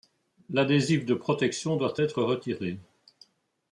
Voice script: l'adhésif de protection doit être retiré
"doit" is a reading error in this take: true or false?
false